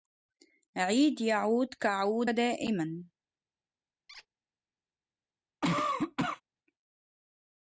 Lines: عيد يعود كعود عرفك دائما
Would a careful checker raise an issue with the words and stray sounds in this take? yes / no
yes